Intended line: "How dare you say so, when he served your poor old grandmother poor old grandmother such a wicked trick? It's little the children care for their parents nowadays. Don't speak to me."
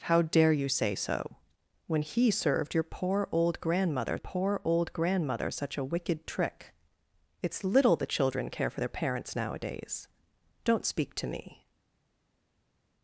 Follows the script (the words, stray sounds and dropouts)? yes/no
yes